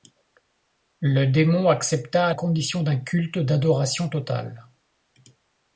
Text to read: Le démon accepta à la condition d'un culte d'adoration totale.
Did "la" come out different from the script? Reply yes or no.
yes